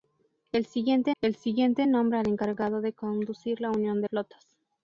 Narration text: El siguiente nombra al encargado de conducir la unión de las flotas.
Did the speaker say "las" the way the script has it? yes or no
no